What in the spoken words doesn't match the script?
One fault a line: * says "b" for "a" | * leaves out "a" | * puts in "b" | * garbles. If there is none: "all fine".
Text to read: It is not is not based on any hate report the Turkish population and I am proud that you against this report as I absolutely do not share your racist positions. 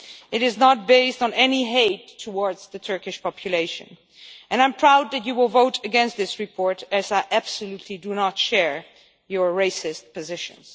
* leaves out "is not"
* says "towards" for "report"
* puts in "will vote"